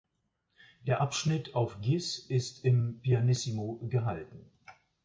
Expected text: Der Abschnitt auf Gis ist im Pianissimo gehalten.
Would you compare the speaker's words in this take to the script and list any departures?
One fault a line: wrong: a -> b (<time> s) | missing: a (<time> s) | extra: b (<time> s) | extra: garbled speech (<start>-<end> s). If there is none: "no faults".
no faults